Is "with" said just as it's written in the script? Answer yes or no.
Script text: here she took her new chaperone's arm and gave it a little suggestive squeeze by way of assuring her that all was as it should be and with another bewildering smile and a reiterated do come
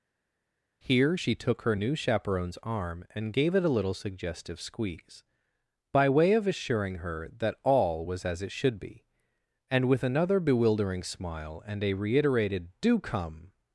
yes